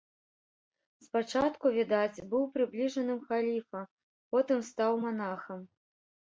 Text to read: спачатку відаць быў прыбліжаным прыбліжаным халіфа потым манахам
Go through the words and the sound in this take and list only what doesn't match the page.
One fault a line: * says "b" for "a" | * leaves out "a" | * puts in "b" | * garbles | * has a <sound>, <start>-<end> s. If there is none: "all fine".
* leaves out "прыбліжаным"
* puts in "стаў"